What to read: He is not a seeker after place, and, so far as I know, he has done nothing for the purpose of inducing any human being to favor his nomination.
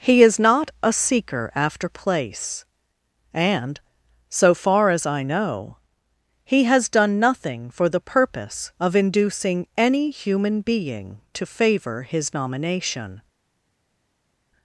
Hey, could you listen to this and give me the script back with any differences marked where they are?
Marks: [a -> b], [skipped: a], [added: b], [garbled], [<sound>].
He is not a seeker after place, and, so far as I know, he has done nothing for the purpose of inducing any human being to favor his nomination.